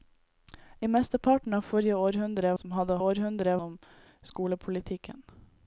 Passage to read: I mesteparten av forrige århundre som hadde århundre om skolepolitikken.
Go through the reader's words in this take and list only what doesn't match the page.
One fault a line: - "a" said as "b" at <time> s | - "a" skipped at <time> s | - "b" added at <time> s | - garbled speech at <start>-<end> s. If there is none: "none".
none